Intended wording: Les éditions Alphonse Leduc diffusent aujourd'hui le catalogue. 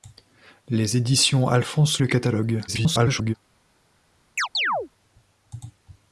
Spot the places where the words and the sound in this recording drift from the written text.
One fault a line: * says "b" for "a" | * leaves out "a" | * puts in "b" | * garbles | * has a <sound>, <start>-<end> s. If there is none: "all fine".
* leaves out "Leduc diffusent aujourd'hui"
* garbles
* has a chirp, 4.4-4.9 s